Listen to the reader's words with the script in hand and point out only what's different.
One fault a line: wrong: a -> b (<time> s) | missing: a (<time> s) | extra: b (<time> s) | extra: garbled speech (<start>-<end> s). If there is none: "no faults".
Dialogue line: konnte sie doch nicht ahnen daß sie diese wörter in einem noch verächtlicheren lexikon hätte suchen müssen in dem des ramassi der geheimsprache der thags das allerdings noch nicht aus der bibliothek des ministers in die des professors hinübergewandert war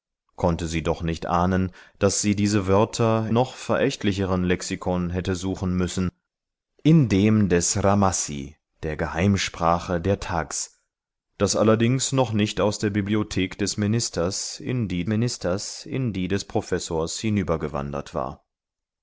missing: in einem (3.3 s)
extra: ministers in die (15.0 s)